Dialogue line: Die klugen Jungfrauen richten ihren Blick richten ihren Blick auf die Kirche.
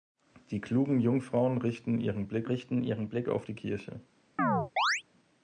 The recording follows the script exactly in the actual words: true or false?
true